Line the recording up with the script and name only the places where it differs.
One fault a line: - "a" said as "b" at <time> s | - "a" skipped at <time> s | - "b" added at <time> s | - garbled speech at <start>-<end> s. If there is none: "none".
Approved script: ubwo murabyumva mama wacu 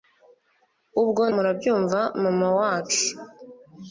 none